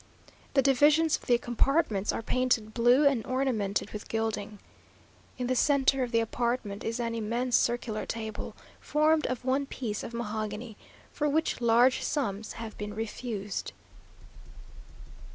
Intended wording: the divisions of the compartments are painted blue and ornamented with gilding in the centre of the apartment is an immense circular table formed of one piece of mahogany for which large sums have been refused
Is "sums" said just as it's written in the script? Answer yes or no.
yes